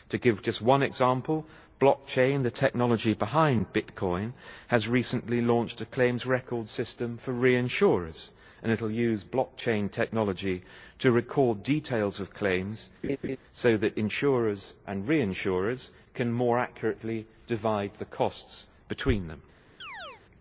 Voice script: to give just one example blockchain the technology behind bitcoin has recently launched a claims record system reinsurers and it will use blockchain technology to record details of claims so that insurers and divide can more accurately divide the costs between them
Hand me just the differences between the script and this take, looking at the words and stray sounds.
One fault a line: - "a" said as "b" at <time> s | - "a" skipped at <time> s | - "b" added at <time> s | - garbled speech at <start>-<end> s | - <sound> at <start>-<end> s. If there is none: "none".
- "for" added at 7.2 s
- laugh at 13.0-13.4 s
- "divide" said as "reinsurers" at 15.1 s
- chirp at 19.8-20.2 s